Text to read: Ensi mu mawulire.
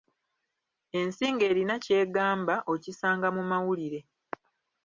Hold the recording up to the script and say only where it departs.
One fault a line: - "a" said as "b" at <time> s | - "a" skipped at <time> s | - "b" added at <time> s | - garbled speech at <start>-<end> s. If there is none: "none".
- "ng'erina ky'egamba okisanga" added at 1.3 s